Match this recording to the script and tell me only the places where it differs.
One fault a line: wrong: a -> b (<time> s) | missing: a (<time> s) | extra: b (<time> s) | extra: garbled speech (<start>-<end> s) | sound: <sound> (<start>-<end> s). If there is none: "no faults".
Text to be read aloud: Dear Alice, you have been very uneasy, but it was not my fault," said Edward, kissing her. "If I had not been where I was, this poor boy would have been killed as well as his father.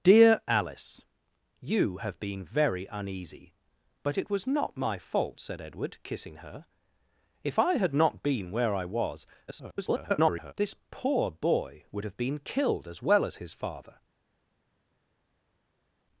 extra: garbled speech (9.5-10.5 s)